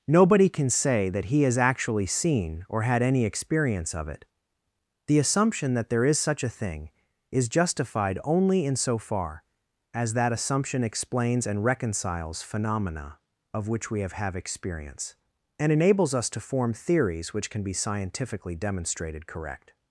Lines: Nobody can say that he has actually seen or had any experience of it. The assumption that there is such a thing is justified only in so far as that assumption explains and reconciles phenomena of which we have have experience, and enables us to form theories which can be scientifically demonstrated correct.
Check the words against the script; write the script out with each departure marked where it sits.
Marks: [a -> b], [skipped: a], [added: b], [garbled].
Nobody can say that he has actually seen or had any experience of it. The assumption that there is such a thing is justified only in so far as that assumption explains and reconciles phenomena of which we have have experience, and enables us to form theories which can be scientifically demonstrated correct.